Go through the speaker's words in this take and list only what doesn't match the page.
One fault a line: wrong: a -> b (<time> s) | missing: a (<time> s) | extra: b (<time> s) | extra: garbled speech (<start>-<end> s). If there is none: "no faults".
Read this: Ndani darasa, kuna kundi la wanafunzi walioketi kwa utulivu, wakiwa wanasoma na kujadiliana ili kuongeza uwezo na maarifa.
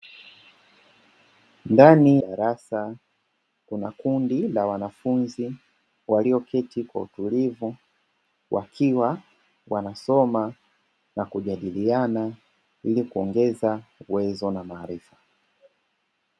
no faults